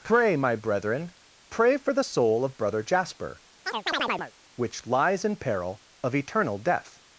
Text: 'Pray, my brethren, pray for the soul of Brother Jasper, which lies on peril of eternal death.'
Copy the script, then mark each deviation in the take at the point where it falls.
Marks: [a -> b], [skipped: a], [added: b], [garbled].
'Pray, my brethren, pray for the soul of Brother Jasper, which lies [on -> in] peril of eternal death.'